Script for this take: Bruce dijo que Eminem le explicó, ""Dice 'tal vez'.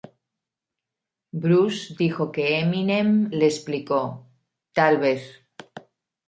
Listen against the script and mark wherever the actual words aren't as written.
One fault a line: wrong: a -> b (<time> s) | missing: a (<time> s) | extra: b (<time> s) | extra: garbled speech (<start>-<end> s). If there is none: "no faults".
missing: Dice (4.3 s)